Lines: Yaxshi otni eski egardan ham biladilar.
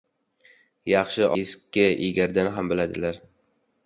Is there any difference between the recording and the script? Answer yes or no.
yes